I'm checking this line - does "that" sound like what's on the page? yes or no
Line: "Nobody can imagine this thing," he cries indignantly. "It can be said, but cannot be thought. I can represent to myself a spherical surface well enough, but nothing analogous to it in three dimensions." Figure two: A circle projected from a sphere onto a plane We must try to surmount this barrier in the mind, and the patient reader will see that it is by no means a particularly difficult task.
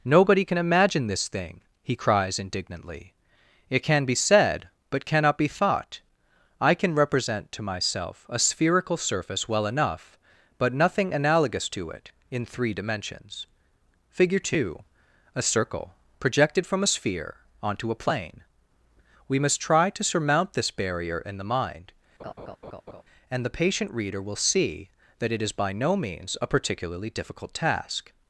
yes